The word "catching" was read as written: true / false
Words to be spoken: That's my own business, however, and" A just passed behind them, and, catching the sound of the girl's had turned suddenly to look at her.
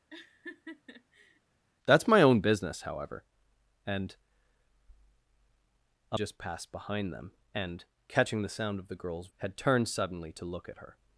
true